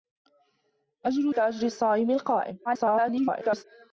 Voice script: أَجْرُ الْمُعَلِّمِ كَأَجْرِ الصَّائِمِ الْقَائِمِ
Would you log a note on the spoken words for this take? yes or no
yes